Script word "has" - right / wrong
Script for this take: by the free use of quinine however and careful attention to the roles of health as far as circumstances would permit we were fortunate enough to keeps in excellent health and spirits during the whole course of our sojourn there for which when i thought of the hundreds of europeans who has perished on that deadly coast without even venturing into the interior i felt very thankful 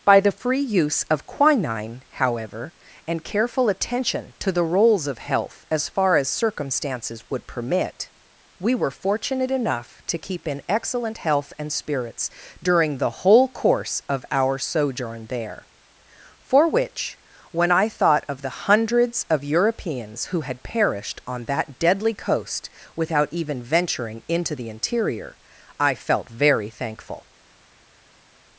wrong